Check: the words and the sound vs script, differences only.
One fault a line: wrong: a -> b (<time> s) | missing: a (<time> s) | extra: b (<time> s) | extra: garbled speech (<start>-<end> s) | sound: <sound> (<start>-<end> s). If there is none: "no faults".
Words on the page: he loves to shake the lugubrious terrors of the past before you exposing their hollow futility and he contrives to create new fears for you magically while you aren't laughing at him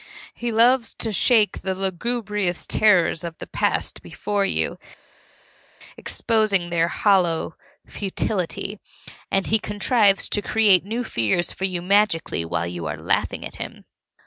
wrong: aren't -> are (12.8 s)